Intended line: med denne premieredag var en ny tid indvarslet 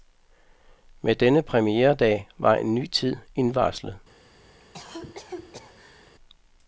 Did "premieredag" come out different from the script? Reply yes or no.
no